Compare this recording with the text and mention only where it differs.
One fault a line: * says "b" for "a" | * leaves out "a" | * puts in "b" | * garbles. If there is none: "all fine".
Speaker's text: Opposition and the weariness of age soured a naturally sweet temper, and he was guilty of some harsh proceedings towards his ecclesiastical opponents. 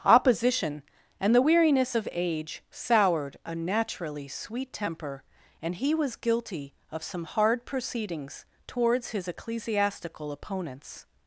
* says "hard" for "harsh"